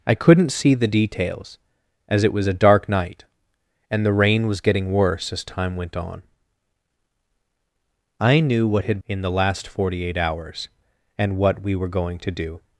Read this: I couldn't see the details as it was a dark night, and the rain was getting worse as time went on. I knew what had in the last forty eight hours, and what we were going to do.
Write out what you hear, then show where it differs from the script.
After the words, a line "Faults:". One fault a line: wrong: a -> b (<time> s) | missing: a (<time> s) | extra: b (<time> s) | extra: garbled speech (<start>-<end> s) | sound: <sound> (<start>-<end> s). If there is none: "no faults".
I couldn't see the details as it was a dark night, and the rain was getting worse as time went on. I knew what had in the last forty eight hours, and what we were going to do.
Faults:
no faults